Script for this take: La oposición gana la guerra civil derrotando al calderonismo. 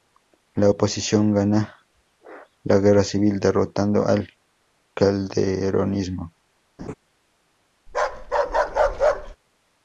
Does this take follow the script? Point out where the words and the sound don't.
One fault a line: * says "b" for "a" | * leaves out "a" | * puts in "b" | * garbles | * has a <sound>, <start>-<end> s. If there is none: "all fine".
* has a laugh, 6.8-6.9 s
* has a bark, 7.9-9.4 s